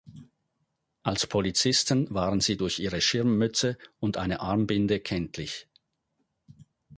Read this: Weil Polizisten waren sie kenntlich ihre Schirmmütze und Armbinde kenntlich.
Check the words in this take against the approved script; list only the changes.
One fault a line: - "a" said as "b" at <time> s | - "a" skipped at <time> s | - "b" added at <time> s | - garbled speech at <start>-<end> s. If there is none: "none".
- "Weil" said as "Als" at 1.0 s
- "kenntlich" said as "durch" at 2.6 s
- "eine" added at 4.2 s